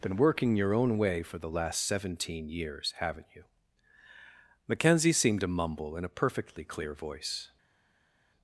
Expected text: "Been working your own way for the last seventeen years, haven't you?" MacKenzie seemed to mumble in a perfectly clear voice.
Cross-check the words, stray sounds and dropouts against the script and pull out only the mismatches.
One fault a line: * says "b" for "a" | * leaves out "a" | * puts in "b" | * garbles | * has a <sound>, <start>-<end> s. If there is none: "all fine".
all fine